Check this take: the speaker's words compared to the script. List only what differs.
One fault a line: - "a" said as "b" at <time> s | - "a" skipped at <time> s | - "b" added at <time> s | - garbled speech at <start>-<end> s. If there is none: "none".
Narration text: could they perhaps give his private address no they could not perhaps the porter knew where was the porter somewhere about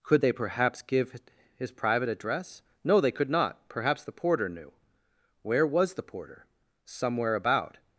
none